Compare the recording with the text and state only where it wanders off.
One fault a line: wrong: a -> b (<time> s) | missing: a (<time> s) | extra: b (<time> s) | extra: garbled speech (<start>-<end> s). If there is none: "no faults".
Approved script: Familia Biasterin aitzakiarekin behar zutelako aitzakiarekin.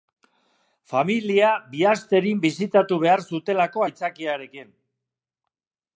wrong: aitzakiarekin -> bisitatu (2.5 s)